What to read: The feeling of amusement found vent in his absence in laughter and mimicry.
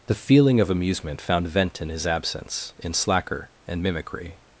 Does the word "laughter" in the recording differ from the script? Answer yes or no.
yes